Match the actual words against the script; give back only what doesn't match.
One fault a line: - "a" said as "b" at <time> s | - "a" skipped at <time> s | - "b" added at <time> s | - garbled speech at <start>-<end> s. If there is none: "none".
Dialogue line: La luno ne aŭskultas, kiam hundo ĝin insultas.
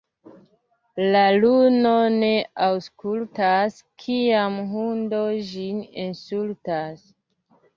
none